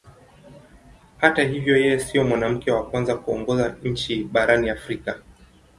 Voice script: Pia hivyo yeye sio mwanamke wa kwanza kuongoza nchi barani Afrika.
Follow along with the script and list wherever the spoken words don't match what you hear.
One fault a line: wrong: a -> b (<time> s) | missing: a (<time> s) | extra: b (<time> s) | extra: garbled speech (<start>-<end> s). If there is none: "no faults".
wrong: Pia -> Hata (1.2 s)